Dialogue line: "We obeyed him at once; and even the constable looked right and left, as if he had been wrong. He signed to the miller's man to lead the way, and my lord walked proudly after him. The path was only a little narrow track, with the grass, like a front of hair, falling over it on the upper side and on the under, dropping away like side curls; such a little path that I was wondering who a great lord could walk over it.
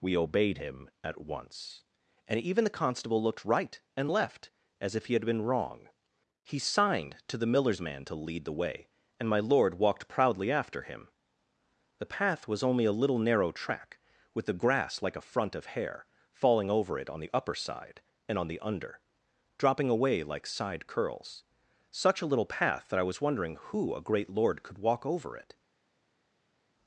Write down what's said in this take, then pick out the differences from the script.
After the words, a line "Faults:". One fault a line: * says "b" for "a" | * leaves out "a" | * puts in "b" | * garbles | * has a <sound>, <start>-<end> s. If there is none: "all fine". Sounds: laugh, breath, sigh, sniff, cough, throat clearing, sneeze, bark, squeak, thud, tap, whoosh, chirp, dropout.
"We obeyed him at once; and even the constable looked right and left, as if he had been wrong. He signed to the miller's man to lead the way, and my lord walked proudly after him. The path was only a little narrow track, with the grass, like a front of hair, falling over it on the upper side and on the under, dropping away like side curls; such a little path that I was wondering who a great lord could walk over it.
Faults:
all fine